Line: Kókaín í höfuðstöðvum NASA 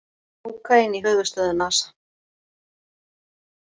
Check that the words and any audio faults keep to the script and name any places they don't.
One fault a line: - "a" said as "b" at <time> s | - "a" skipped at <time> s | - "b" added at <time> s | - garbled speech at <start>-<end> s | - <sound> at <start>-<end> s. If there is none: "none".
none